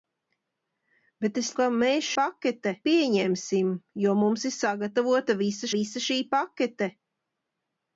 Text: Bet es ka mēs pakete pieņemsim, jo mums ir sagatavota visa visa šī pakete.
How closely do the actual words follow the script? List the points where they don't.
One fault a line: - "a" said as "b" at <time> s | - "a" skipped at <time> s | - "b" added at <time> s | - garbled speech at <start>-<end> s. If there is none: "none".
none